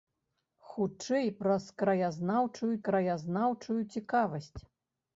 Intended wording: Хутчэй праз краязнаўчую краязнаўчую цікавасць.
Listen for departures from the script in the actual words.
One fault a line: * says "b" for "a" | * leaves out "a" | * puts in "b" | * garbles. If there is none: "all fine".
all fine